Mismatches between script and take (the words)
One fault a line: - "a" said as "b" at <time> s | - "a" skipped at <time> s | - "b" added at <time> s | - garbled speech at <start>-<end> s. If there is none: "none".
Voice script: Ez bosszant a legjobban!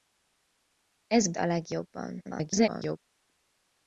- "bosszant" skipped at 1.3 s
- garbled speech at 2.2-3.0 s